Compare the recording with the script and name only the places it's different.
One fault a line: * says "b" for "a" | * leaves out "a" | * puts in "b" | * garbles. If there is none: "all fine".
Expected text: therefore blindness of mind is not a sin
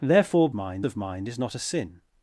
* says "mind" for "blindness"